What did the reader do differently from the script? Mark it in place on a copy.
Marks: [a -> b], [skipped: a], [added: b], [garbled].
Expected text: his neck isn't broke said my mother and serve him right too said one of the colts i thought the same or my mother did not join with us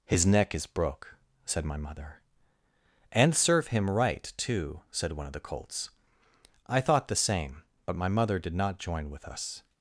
his neck [isn't -> is] broke said my mother and serve him right too said one of the colts i thought the same [or -> but] my mother did not join with us